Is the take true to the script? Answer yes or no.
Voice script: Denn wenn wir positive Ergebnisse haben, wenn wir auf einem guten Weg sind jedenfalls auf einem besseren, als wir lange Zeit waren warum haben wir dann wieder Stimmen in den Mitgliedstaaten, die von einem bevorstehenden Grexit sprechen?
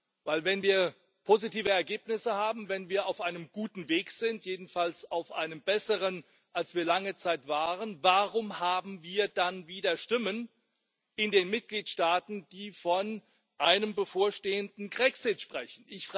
yes